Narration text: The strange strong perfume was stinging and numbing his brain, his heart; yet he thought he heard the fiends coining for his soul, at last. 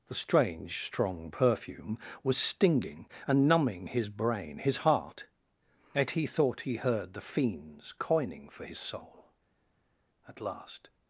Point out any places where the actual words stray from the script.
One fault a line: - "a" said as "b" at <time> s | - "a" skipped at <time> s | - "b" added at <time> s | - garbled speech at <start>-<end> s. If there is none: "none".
none